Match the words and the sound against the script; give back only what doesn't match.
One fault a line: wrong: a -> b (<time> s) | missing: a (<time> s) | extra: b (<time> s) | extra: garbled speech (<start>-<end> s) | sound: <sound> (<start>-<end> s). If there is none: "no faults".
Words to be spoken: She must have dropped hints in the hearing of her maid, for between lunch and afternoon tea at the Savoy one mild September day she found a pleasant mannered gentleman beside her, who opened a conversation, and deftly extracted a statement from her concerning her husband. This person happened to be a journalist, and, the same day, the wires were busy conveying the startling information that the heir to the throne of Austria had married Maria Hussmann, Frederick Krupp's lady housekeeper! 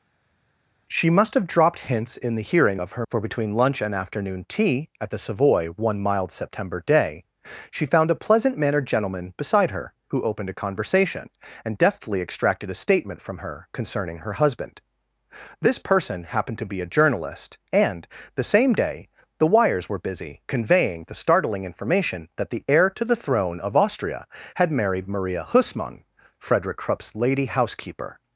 missing: maid (3.0 s)